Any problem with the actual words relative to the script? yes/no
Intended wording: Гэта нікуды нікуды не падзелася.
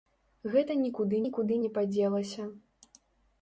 no